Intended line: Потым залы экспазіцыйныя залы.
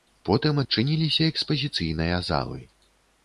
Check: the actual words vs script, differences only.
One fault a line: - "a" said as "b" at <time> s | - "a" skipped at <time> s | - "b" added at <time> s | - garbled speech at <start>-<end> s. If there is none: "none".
- "залы" said as "адчыніліся" at 0.6 s